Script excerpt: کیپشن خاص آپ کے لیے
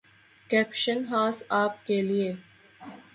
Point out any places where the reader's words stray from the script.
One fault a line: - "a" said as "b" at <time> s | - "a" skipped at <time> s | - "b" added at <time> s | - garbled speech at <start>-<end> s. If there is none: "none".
none